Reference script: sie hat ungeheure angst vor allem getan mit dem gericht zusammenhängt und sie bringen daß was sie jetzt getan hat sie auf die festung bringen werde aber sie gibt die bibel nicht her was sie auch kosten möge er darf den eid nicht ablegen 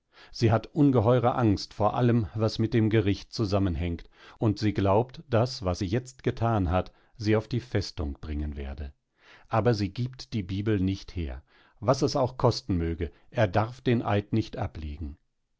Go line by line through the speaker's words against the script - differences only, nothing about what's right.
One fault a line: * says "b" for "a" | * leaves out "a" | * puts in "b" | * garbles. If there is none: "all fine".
* says "was" for "getan"
* says "glaubt" for "bringen"
* says "es" for "sie"